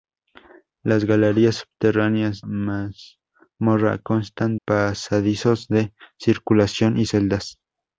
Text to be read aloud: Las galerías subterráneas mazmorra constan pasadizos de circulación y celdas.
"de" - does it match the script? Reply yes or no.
yes